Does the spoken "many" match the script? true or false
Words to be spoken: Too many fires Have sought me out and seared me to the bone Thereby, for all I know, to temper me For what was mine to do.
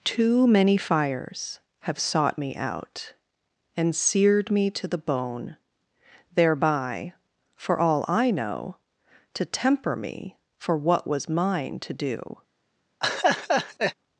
true